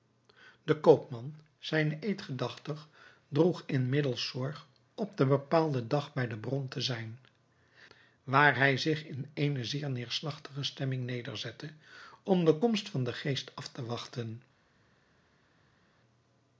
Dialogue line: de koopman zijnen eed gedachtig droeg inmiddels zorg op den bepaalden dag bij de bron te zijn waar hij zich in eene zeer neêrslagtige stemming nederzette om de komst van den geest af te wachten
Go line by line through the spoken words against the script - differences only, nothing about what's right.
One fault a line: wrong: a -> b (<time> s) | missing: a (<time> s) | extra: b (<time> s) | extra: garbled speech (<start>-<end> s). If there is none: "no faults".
no faults